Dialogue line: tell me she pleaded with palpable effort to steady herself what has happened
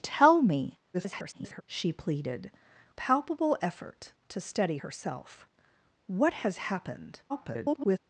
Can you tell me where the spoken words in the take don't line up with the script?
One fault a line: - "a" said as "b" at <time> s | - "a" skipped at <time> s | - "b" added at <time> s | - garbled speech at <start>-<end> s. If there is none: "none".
- garbled speech at 0.9-1.6 s
- "with" skipped at 2.5 s
- garbled speech at 7.3-8.0 s